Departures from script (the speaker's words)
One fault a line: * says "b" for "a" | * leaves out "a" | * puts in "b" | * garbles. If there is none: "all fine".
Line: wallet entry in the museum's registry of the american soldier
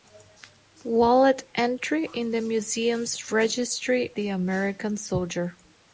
* leaves out "of"